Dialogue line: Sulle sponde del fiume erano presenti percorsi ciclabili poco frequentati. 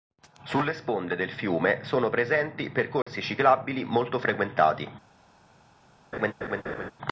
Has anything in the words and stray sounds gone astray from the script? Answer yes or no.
yes